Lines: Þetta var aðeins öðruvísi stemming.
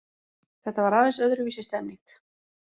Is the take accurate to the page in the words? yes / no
yes